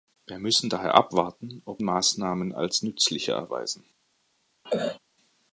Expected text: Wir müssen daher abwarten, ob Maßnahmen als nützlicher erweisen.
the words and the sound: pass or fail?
fail